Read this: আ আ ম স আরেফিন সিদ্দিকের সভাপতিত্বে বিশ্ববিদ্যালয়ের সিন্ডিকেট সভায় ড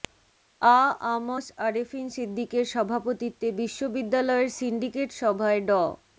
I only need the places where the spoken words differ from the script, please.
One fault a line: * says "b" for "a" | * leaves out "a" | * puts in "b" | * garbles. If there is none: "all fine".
all fine